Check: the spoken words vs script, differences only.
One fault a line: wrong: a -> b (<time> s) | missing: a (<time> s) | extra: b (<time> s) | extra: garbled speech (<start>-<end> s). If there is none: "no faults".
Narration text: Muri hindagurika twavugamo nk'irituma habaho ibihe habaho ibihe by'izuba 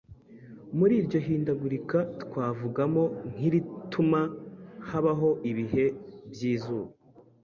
extra: iryo (1.0 s)
missing: habaho ibihe (5.8 s)